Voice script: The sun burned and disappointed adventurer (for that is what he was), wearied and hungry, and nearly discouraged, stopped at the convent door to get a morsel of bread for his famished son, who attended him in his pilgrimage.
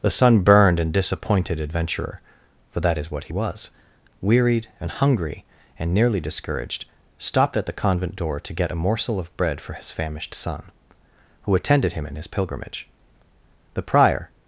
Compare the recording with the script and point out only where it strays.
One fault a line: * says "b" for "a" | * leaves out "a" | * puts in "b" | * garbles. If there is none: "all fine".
* puts in "The prior"